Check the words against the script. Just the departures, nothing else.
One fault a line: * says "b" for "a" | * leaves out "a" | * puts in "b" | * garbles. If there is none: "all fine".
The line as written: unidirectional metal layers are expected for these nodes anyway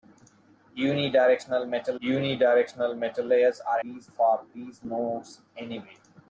* puts in "unidirectional metal"
* says "these" for "expected"